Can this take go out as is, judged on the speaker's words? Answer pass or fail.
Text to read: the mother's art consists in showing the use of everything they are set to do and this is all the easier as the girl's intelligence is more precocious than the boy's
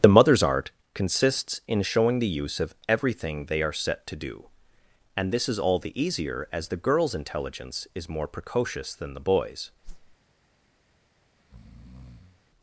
pass